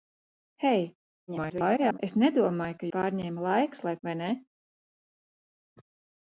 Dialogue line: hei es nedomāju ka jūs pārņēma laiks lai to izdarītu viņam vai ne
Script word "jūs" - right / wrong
wrong